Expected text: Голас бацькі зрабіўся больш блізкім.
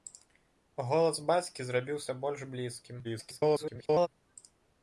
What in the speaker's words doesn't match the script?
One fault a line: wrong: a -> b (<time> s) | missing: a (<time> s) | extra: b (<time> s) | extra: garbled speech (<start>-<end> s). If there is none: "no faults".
extra: garbled speech (3.0-4.1 s)